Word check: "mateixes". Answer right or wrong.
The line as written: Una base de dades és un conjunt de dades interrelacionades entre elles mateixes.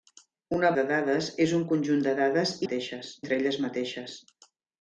right